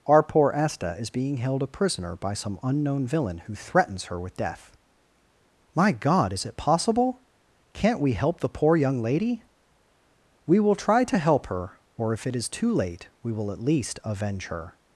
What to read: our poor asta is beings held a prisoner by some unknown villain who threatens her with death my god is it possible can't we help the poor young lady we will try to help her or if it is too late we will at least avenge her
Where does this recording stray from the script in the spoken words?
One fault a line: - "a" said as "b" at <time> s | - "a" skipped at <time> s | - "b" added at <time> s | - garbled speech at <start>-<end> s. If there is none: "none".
- "beings" said as "being" at 1.1 s